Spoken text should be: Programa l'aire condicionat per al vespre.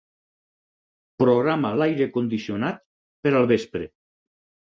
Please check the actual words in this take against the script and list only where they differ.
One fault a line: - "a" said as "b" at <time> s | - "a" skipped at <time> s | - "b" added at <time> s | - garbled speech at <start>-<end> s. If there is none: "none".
none